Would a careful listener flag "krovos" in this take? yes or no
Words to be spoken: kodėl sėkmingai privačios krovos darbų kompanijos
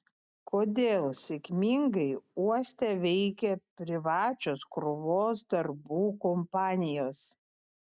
no